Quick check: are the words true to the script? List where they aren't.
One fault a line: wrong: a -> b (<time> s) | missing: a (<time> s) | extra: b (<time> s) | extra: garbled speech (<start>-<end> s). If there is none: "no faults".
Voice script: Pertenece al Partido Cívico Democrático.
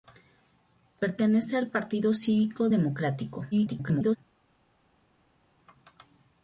extra: garbled speech (3.5-4.2 s)